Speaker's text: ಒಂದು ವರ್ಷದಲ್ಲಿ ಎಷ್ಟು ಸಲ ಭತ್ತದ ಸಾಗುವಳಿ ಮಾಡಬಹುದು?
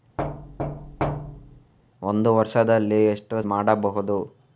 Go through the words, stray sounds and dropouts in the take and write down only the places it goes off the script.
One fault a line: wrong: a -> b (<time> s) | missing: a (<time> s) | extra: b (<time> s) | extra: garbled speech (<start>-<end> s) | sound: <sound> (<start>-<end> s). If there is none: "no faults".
sound: thud (0.2-1.7 s)
missing: ಸಲ ಭತ್ತದ ಸಾಗುವಳಿ (3.4 s)